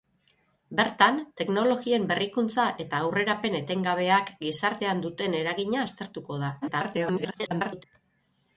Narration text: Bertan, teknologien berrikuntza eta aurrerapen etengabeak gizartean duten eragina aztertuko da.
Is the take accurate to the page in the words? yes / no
no